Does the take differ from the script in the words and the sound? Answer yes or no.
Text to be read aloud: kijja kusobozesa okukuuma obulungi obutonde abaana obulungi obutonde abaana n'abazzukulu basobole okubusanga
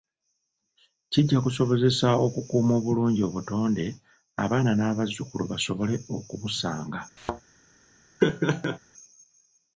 yes